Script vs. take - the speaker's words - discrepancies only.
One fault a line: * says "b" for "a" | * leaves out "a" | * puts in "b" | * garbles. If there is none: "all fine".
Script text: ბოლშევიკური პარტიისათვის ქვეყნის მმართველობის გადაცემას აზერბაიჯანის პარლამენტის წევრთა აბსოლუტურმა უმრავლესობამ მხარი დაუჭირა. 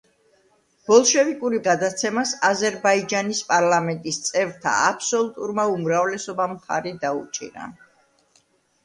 * leaves out "პარტიისათვის ქვეყნის მმართველობის"